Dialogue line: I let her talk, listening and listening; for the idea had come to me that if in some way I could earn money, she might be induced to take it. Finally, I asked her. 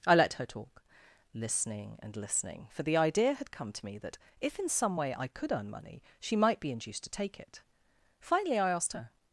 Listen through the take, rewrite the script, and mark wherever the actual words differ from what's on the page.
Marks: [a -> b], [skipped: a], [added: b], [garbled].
I let her talk, listening and listening; for the idea had come to me that if in some way I could earn money, she might be induced to take it. Finally, I asked her.